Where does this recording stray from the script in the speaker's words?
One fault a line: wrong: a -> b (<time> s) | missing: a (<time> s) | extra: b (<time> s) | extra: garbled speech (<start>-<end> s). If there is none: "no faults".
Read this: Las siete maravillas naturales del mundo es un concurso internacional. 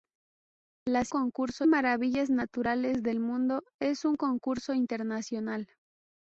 wrong: siete -> concurso (1.1 s)